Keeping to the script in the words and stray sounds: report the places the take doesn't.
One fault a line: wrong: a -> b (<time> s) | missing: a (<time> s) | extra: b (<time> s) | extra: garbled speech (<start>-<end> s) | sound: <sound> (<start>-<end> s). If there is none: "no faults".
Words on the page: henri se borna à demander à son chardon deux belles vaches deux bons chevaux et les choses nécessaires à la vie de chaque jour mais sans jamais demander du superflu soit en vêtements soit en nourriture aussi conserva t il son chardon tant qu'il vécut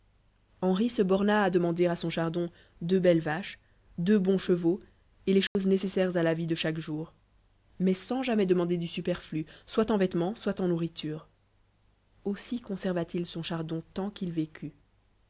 sound: dropout (5.5-5.6 s)